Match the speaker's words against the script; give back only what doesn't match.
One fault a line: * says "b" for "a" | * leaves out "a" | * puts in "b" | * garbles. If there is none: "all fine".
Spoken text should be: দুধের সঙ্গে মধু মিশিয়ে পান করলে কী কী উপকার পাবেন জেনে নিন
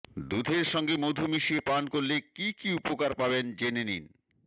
all fine